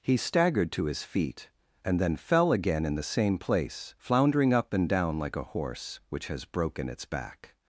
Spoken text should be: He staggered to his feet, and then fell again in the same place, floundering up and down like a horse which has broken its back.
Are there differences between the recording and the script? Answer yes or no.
no